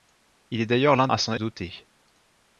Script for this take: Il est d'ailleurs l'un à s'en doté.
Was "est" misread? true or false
false